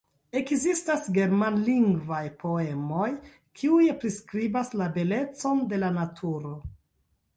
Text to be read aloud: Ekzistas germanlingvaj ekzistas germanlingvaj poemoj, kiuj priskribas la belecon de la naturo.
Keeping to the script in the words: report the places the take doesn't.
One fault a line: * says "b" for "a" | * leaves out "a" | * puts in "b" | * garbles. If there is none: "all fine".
* leaves out "ekzistas germanlingvaj"